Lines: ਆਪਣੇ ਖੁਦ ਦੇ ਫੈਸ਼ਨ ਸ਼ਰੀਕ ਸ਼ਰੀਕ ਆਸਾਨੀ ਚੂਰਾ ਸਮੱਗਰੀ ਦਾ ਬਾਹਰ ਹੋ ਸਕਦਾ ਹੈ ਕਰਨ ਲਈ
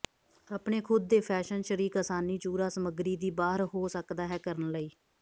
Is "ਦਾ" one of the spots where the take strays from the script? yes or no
yes